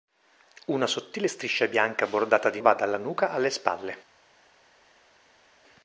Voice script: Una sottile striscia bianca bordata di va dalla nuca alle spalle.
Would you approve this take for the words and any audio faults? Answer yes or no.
yes